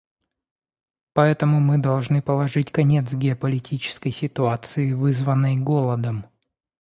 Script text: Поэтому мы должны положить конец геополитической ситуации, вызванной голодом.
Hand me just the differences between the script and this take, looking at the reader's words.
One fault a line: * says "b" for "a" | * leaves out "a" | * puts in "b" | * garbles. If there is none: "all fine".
all fine